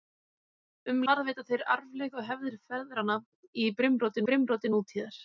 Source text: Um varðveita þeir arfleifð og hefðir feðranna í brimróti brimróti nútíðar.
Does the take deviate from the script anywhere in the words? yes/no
no